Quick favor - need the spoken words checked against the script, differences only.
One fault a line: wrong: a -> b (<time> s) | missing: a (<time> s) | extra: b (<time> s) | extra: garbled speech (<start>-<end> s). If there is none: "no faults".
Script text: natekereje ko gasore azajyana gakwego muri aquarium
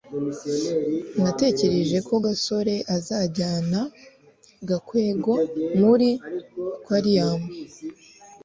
no faults